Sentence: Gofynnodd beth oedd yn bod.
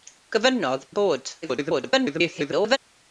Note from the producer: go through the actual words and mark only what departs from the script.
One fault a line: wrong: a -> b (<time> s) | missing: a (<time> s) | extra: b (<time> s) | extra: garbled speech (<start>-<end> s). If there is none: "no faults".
missing: beth oedd (0.9 s)
extra: garbled speech (1.4-2.8 s)